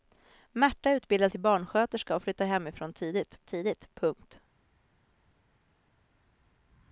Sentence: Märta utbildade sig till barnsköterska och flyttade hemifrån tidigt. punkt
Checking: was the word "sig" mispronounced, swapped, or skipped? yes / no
yes